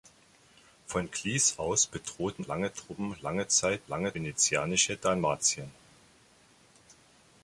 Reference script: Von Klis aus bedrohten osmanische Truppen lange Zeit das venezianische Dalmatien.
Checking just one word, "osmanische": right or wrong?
wrong